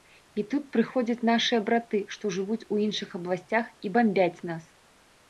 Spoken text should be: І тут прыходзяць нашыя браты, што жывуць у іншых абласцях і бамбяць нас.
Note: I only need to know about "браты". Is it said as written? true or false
true